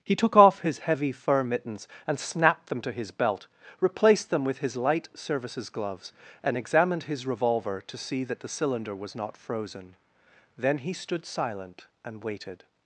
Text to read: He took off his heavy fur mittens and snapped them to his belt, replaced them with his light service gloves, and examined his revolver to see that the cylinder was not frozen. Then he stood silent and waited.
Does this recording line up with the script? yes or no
no